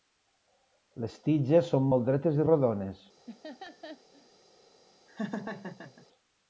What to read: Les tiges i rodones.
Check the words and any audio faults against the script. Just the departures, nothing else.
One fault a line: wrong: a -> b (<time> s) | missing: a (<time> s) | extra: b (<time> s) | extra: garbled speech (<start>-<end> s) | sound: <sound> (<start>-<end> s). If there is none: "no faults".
extra: són molt dretes (1.8 s)
sound: laugh (3.3-4.3 s)
sound: laugh (5.1-6.1 s)